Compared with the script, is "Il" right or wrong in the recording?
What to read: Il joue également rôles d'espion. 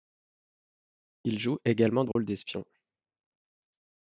right